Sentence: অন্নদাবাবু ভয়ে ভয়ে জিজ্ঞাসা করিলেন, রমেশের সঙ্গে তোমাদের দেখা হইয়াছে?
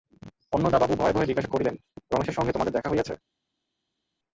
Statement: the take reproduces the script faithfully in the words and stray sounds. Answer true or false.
true